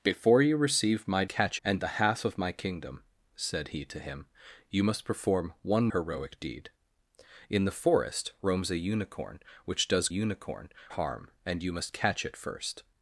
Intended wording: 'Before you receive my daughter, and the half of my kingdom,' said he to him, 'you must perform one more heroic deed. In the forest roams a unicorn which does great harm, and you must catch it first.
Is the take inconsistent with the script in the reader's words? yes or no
yes